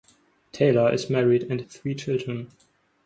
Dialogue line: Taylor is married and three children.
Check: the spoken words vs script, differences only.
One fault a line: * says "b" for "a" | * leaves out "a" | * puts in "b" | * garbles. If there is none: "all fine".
all fine